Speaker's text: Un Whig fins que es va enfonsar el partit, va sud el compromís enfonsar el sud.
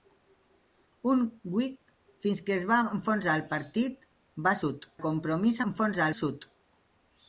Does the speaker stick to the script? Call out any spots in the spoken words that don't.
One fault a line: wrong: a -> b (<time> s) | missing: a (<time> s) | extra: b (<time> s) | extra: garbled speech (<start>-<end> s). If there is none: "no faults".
no faults